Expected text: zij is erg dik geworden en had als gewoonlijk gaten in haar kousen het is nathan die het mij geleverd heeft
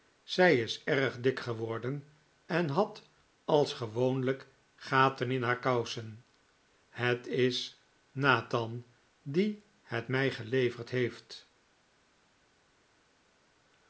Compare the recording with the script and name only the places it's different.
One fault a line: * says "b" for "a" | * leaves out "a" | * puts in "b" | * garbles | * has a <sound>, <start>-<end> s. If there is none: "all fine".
all fine